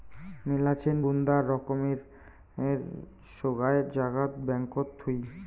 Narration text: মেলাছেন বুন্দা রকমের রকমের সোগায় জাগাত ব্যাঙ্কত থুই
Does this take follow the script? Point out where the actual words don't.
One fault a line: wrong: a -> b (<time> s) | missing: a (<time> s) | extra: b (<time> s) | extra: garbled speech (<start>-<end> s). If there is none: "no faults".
missing: রকমের (2.0 s)